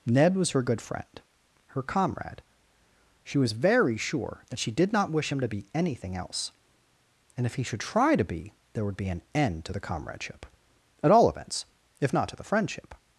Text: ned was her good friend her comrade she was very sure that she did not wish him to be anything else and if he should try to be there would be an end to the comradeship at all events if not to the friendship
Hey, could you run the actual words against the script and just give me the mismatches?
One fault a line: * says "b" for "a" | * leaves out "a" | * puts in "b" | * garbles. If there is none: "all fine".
all fine